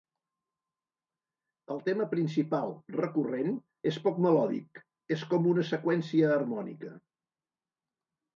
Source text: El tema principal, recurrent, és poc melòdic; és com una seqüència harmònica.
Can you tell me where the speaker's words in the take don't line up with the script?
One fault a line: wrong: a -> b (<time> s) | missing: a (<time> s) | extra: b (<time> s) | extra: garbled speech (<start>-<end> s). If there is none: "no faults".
no faults